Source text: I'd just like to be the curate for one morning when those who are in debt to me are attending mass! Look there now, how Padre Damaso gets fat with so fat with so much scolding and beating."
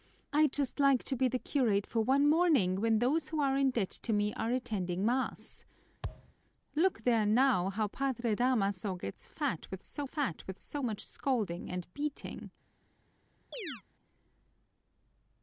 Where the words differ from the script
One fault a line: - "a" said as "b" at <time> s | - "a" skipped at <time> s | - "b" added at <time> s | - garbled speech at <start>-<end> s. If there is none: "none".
none